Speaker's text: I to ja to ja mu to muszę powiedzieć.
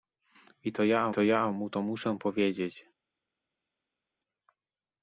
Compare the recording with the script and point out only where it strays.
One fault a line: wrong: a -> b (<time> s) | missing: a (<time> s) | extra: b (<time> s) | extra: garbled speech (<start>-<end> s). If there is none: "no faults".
no faults